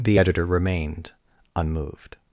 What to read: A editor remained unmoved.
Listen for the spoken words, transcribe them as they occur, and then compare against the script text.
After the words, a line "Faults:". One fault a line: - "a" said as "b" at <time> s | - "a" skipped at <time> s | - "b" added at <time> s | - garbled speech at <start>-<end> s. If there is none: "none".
The editor remained unmoved.
Faults:
- "A" said as "The" at 0.0 s